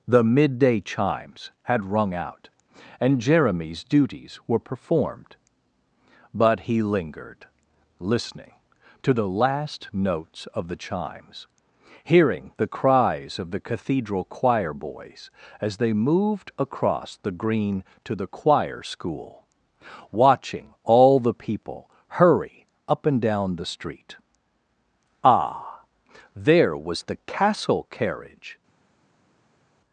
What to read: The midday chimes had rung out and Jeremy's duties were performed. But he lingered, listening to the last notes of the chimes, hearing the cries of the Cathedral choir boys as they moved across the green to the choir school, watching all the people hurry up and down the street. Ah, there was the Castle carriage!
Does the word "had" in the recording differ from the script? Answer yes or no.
no